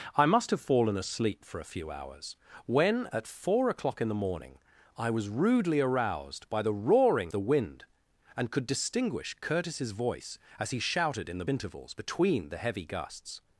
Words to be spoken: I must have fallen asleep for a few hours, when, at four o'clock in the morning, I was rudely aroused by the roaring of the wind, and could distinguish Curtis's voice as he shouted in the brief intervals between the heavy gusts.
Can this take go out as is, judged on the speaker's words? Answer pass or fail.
fail